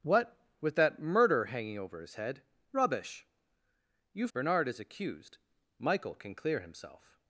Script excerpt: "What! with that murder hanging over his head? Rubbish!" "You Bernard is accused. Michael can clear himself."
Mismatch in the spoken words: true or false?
false